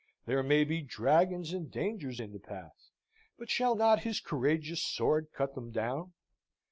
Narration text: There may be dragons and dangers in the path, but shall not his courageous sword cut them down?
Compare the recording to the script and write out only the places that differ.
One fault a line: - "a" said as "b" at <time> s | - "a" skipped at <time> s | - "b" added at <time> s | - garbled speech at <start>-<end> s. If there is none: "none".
none